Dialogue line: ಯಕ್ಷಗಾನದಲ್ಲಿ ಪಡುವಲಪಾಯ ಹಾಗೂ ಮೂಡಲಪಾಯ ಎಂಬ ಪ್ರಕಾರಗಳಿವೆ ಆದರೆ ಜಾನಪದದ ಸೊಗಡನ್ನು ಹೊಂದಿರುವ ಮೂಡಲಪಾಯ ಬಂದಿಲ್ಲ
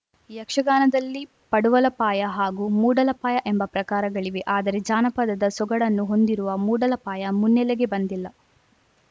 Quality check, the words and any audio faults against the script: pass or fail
fail